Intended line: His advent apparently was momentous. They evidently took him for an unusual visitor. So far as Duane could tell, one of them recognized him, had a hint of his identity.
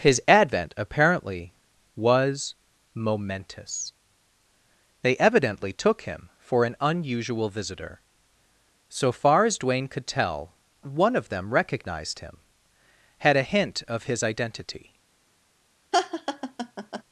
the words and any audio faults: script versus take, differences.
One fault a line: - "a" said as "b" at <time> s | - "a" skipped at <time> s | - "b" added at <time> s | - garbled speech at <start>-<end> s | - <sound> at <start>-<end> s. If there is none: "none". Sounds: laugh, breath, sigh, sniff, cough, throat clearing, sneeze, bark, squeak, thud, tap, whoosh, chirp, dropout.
- laugh at 15.9-17.0 s